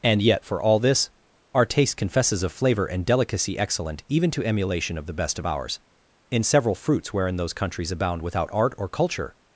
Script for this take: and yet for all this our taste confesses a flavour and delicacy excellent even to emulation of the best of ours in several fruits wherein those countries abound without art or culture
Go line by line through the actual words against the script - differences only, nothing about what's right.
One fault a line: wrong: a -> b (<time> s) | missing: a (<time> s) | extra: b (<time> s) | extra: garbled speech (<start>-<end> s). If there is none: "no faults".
wrong: a flavour -> of flavor (2.4 s)